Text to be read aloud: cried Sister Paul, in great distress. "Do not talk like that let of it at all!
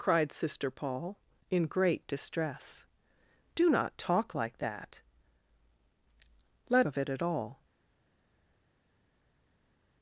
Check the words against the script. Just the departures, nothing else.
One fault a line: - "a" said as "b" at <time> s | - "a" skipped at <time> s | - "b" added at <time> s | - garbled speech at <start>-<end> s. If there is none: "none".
none